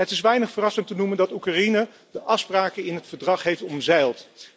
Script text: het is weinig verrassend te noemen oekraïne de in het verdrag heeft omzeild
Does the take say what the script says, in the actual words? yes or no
no